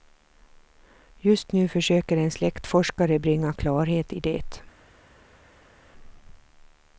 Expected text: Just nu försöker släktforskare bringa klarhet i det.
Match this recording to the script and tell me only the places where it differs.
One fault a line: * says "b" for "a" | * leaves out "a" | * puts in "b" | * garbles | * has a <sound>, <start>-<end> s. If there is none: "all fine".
* puts in "en"